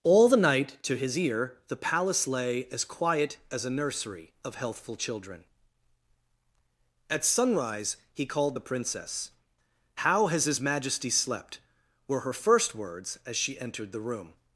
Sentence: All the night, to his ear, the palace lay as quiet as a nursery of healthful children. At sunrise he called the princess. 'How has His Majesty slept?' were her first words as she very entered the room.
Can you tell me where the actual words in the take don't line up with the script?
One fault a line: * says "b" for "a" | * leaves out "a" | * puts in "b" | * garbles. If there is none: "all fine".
* leaves out "very"